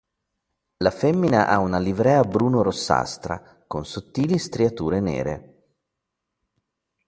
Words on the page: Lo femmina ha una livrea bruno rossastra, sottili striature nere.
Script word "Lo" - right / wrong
wrong